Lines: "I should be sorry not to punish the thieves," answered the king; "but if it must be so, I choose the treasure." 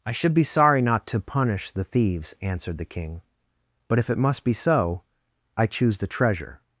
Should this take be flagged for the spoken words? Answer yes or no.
no